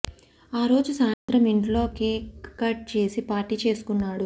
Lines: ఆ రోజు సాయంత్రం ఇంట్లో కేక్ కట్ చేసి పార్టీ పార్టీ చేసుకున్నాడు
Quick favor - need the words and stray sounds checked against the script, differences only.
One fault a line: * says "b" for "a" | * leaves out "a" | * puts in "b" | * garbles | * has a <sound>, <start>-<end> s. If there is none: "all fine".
* has a dropout, 1.1-1.3 s
* leaves out "పార్టీ"